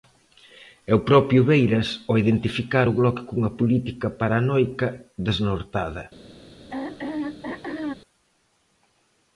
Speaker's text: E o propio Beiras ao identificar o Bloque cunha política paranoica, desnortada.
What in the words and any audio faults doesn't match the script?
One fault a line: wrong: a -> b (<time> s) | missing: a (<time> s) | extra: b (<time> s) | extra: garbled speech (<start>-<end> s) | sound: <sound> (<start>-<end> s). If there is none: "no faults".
sound: throat clearing (6.7-7.9 s)